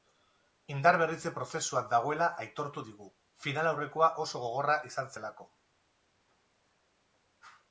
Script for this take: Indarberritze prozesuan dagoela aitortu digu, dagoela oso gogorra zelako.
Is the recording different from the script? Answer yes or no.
yes